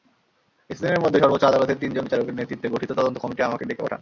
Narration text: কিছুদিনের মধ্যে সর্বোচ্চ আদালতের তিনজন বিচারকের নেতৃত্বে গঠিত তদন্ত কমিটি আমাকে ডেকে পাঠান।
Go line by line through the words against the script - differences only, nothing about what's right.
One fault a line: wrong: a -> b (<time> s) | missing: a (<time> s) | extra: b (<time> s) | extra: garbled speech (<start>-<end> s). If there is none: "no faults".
no faults